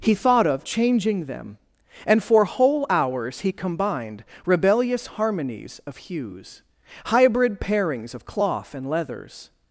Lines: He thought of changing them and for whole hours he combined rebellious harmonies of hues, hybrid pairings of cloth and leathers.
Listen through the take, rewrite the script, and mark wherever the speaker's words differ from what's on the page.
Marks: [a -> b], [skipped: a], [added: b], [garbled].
He thought of changing them and for whole hours he combined rebellious harmonies of hues, hybrid pairings of cloth and leathers.